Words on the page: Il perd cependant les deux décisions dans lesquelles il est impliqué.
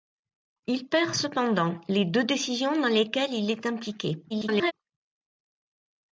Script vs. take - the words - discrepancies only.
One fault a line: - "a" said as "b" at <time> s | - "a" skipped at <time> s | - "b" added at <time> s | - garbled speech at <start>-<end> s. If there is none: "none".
- garbled speech at 4.3-4.7 s